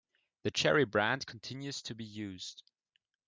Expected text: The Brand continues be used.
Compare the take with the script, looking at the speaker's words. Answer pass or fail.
fail